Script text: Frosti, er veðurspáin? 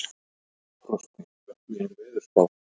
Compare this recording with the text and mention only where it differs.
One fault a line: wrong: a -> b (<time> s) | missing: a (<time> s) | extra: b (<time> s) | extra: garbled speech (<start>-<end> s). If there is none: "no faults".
extra: hvernig (1.5 s)